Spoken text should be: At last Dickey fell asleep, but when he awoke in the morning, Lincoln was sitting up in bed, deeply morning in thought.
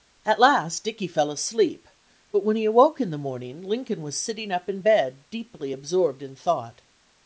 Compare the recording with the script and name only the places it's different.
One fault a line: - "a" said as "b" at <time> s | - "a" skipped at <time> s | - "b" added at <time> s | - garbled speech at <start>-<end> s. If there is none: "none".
- "morning" said as "absorbed" at 5.7 s